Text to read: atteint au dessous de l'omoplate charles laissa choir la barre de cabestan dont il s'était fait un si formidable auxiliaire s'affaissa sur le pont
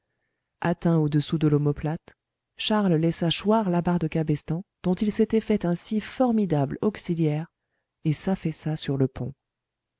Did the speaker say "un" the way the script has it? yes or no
yes